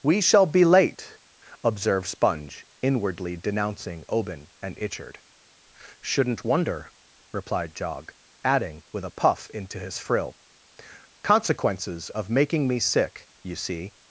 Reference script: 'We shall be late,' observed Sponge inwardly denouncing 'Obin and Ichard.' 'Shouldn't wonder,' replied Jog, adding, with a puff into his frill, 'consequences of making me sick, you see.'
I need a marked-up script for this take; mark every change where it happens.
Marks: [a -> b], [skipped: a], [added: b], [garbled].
'We shall be late,' observed Sponge inwardly denouncing 'Obin and Ichard.' 'Shouldn't wonder,' replied Jog, adding, with a puff into his frill, 'consequences of making me sick, you see.'